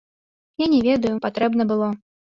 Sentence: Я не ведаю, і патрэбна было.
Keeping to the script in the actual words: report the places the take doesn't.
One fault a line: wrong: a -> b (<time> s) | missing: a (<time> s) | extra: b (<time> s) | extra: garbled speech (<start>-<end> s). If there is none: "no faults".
no faults